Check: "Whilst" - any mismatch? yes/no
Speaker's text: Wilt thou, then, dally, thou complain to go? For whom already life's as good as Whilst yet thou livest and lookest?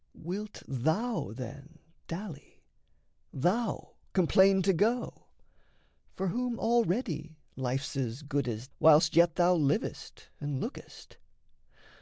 no